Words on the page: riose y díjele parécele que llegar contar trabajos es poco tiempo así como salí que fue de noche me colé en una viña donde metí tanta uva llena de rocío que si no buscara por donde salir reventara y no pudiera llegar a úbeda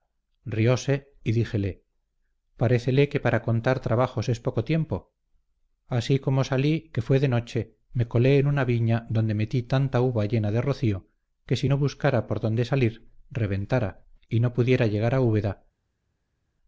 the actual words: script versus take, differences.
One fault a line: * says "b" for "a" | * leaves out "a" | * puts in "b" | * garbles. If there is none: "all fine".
* says "para" for "llegar"